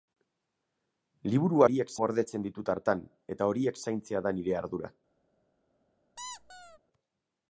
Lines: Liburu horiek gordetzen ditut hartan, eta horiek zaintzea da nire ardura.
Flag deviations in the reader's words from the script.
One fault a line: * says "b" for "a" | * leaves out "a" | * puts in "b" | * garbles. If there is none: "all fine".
all fine